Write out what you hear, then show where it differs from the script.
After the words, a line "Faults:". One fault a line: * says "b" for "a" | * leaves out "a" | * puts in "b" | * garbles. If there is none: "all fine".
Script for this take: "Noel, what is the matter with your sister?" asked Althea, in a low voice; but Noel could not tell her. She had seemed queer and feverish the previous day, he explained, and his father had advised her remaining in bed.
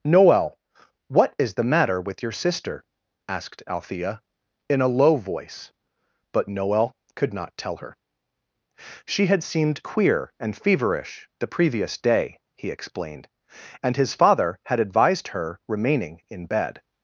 "Noel, what is the matter with your sister?" asked Althea, in a low voice; but Noel could not tell her. She had seemed queer and feverish the previous day, he explained, and his father had advised her remaining in bed.
Faults:
all fine